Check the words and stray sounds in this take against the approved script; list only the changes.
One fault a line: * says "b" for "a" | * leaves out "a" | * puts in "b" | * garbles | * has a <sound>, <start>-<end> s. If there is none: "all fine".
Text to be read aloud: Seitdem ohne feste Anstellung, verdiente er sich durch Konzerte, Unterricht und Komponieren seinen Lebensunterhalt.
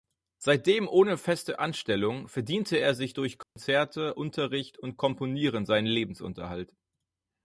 * has a dropout, 3.4-3.6 s